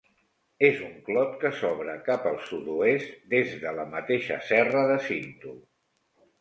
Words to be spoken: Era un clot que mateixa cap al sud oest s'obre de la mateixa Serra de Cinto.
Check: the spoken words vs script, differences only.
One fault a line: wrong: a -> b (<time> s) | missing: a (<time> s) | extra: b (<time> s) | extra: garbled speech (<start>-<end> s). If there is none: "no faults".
wrong: Era -> És (0.7 s)
wrong: mateixa -> s'obre (1.6 s)
wrong: s'obre -> des (3.4 s)